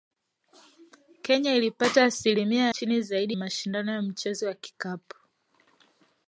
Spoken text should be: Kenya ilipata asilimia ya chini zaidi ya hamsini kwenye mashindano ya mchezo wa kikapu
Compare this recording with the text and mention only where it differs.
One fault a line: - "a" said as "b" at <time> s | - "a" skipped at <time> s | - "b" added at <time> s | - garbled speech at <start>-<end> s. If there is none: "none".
- "ya" skipped at 2.7 s
- "ya hamsini kwenye" skipped at 3.4 s